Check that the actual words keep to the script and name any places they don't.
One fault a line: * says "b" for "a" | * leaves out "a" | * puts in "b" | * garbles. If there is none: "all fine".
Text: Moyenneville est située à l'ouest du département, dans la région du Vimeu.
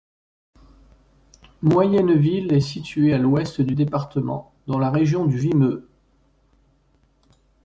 all fine